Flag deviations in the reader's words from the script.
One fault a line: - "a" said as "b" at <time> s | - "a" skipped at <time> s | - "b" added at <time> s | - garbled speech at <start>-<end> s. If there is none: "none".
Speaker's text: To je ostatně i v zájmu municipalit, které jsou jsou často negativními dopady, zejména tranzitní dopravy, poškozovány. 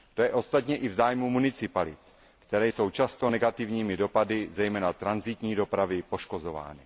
- "jsou" skipped at 2.9 s